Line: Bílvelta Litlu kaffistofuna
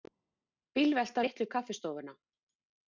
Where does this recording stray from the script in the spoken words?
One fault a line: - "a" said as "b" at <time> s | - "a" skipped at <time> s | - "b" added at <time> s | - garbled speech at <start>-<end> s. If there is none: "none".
none